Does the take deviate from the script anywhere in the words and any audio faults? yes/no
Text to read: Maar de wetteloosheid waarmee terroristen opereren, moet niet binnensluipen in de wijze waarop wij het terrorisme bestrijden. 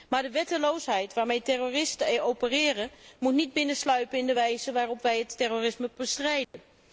yes